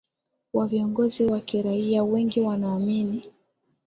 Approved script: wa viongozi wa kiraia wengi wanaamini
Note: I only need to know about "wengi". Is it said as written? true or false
true